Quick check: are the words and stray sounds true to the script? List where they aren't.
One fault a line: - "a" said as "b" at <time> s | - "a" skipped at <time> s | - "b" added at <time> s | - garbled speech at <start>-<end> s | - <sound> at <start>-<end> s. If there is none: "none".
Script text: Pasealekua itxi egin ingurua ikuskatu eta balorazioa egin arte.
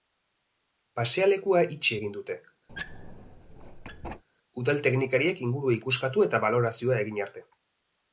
- "dute udal teknikariek" added at 2.2 s
- squeak at 2.7-4.2 s